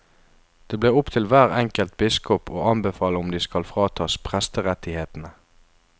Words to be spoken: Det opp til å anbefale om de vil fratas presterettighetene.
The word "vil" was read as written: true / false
false